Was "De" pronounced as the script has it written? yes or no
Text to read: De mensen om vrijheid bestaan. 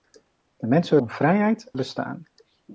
yes